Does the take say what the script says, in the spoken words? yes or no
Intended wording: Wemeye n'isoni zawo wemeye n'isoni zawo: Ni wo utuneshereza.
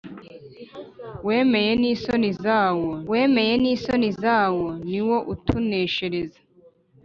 yes